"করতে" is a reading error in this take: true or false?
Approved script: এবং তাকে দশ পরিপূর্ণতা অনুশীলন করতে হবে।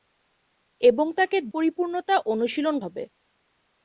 true